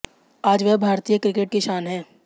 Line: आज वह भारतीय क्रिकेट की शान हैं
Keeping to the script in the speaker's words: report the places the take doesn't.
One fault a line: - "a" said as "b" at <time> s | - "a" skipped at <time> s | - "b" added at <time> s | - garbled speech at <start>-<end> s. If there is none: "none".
none